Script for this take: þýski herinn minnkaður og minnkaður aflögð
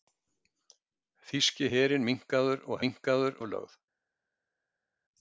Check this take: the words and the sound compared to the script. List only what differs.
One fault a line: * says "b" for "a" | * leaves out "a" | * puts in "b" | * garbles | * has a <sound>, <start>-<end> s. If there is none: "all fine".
all fine